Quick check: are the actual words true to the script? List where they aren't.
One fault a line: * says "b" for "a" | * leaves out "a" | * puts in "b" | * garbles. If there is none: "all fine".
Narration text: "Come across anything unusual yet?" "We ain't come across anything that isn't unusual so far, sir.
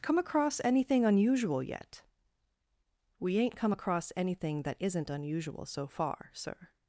all fine